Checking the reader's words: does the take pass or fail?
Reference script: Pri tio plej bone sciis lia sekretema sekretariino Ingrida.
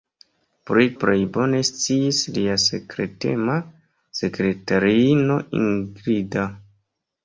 fail